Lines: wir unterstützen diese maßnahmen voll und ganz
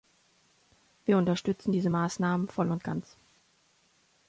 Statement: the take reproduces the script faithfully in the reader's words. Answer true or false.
true